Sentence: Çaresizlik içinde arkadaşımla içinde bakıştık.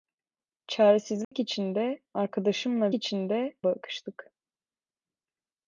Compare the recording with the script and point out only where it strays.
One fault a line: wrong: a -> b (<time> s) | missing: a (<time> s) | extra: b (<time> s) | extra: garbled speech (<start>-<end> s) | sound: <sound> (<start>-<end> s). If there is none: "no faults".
sound: dropout (1.2-1.3 s)